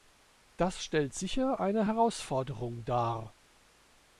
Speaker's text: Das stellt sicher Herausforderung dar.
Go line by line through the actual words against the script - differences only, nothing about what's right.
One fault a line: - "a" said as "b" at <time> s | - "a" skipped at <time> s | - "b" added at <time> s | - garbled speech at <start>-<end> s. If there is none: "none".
- "eine" added at 1.6 s